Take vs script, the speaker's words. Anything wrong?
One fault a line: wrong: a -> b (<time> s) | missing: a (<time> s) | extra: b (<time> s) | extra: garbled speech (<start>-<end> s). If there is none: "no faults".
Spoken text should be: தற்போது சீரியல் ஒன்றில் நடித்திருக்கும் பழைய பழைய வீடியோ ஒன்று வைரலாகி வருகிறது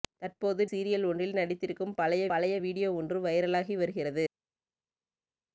no faults